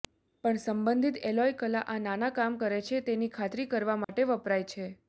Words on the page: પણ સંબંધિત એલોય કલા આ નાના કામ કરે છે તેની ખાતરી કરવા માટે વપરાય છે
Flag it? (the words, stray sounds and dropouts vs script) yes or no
yes